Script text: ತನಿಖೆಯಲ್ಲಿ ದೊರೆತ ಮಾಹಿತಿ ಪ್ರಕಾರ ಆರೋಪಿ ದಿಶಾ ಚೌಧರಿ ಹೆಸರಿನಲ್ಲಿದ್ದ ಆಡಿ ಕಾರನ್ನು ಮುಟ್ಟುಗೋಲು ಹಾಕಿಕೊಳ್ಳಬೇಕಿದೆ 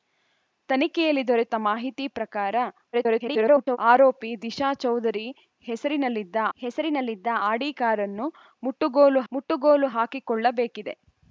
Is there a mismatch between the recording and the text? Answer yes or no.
yes